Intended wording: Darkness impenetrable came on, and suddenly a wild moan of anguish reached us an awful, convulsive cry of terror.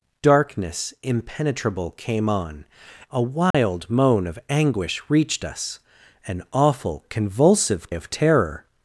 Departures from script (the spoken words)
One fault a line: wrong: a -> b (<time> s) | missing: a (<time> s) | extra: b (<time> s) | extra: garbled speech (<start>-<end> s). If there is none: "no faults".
missing: and suddenly (2.6 s)
missing: cry (7.9 s)